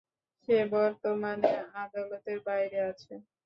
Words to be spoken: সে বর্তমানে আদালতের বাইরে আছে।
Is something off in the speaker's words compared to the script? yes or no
no